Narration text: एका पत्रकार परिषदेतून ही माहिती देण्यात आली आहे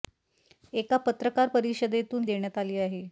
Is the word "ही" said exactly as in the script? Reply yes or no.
no